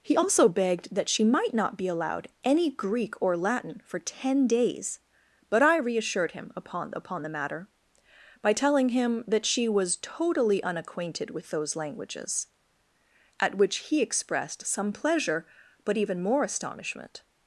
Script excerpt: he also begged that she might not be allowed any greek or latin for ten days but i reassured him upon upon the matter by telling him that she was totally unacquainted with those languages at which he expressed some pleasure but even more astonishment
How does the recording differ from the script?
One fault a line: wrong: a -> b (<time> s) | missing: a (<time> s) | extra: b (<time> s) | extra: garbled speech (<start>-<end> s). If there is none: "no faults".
no faults